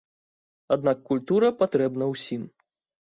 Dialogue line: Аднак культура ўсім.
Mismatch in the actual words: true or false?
true